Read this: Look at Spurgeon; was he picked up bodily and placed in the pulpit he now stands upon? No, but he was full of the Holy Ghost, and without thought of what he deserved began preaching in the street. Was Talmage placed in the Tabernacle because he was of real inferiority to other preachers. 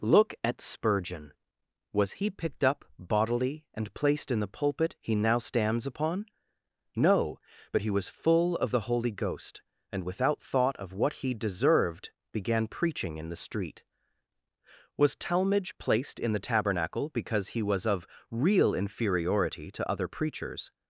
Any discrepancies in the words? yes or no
no